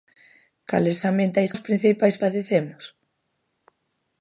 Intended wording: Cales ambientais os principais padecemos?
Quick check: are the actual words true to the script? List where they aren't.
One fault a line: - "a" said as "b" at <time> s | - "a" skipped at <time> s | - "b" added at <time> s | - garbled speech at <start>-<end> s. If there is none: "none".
none